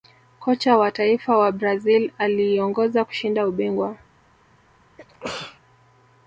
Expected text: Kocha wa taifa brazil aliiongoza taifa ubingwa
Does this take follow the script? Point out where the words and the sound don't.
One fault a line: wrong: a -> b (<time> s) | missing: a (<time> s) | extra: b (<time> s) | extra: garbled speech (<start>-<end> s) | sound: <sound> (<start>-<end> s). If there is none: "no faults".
extra: wa (1.4 s)
wrong: taifa -> kushinda (3.0 s)
sound: sneeze (5.0-5.6 s)